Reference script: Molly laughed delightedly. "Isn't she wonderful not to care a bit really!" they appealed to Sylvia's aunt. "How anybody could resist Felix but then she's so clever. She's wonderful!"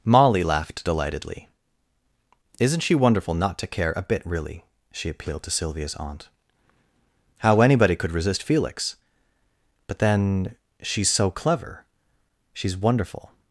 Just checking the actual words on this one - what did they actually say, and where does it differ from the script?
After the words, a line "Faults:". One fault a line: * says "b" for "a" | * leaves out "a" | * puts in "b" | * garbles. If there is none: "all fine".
Molly laughed delightedly. "Isn't she wonderful not to care a bit really!" she appealed to Sylvia's aunt. "How anybody could resist Felix but then she's so clever. She's wonderful!"
Faults:
* says "she" for "they"